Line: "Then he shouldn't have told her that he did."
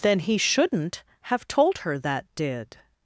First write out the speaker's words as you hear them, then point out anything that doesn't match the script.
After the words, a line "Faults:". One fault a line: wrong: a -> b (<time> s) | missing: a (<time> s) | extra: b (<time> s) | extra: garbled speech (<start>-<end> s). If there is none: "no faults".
"Then he shouldn't have told her that did."
Faults:
missing: he (2.2 s)